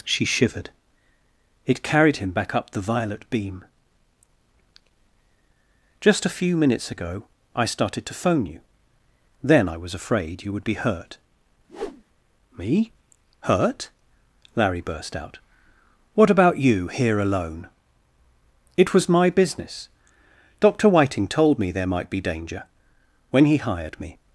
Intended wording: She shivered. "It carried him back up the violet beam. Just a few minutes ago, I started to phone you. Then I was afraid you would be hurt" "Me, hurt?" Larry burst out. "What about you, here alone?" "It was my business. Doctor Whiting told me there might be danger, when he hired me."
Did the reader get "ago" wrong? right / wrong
right